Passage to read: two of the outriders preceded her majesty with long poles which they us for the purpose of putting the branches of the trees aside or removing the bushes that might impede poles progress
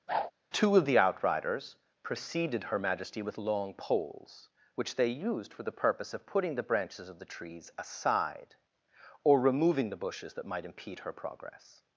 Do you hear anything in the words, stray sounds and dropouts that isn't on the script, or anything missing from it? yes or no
yes